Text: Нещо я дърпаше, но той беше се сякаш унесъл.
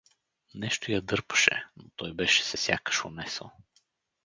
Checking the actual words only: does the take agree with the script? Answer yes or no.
yes